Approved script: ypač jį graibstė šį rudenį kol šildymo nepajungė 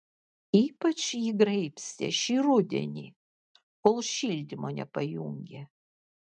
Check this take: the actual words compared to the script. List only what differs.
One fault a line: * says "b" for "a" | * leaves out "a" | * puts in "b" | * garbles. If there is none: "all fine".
all fine